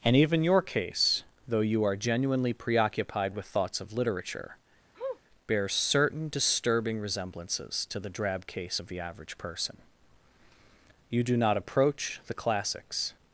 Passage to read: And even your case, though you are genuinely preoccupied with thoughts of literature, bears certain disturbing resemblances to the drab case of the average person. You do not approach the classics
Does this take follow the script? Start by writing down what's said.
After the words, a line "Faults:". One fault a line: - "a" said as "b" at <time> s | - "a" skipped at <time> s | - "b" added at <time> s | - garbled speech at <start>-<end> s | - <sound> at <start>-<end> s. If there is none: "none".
And even your case, though you are genuinely preoccupied with thoughts of literature, bears certain disturbing resemblances to the drab case of the average person. You do not approach the classics
Faults:
- sniff at 4.9-5.2 s